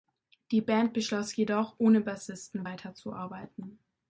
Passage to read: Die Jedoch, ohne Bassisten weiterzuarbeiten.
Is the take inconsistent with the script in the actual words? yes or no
yes